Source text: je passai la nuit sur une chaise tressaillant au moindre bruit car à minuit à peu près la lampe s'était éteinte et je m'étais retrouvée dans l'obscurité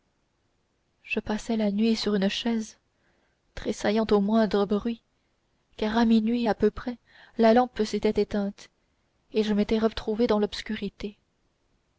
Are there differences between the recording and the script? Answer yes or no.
no